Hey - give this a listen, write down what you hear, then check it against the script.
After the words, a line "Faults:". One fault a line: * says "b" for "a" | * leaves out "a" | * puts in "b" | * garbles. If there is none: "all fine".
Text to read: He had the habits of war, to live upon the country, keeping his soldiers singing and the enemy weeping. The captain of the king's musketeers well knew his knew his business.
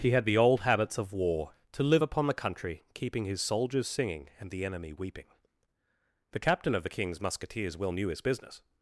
He had the old habits of war, to live upon the country, keeping his soldiers singing and the enemy weeping. The captain of the king's musketeers well knew his business.
Faults:
* puts in "old"
* leaves out "knew his"